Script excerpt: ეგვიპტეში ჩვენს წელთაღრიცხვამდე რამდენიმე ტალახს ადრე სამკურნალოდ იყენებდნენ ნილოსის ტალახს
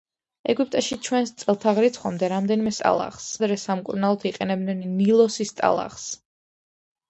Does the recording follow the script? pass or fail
pass